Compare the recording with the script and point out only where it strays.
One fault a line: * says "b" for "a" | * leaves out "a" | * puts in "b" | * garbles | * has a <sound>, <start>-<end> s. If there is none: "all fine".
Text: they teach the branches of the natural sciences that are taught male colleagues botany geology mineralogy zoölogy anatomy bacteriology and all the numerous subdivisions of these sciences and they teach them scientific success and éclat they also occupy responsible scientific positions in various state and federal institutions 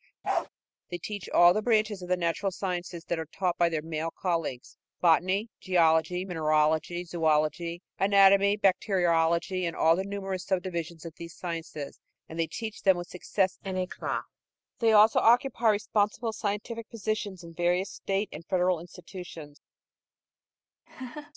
* has a bark, 0.2-0.5 s
* puts in "all"
* puts in "by their"
* says "with" for "scientific"
* has a laugh, 20.9-21.3 s